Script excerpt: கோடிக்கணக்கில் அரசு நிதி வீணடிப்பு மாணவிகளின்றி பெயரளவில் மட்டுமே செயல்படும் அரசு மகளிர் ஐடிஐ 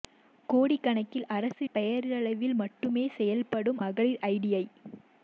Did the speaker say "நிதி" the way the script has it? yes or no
no